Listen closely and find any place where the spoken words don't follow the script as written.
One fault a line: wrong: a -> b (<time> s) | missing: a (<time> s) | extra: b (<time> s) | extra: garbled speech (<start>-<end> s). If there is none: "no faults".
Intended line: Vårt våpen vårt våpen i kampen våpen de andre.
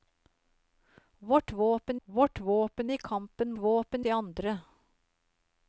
no faults